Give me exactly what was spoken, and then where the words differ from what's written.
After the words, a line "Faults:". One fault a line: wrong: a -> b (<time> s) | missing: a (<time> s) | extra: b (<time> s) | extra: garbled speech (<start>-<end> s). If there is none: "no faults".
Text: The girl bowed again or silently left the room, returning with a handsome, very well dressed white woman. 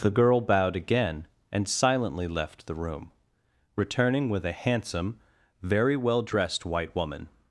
The girl bowed again and silently left the room, returning with a handsome, very well dressed white woman.
Faults:
wrong: or -> and (1.5 s)